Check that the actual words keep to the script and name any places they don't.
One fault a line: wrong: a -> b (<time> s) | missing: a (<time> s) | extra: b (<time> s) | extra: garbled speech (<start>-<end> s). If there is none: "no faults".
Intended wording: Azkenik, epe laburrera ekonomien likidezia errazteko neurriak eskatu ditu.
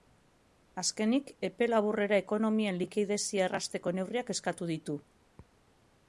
no faults